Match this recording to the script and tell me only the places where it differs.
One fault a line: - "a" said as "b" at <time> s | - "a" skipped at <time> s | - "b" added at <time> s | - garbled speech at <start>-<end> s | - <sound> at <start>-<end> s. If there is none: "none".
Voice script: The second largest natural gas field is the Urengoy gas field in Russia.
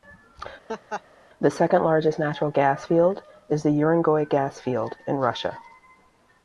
- laugh at 0.7-1.0 s